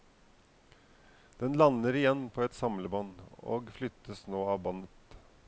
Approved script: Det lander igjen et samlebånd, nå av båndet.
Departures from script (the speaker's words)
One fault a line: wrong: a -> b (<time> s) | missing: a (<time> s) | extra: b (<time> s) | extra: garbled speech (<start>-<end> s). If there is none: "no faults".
wrong: Det -> Den (1.4 s)
extra: på (2.3 s)
extra: og flyttes (3.4 s)